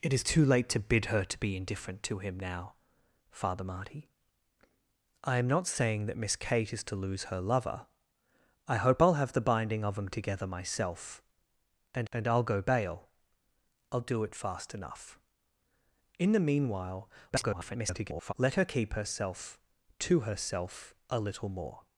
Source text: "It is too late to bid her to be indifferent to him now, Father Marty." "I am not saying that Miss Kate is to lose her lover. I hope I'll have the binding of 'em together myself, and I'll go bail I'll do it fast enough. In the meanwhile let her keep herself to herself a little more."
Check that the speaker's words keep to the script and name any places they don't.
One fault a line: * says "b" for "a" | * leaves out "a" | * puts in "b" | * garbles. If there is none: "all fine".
* puts in "and"
* garbles